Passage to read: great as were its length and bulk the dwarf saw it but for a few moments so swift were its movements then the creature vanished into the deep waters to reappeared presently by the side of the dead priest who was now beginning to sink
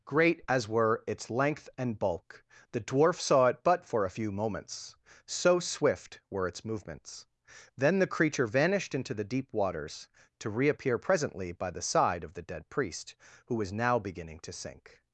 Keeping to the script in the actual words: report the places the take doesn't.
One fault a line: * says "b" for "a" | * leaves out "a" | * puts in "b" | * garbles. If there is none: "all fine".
* says "reappear" for "reappeared"